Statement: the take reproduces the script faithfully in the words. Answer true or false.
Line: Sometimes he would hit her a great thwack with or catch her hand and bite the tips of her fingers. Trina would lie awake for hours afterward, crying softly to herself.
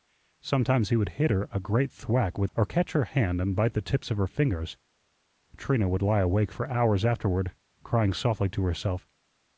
true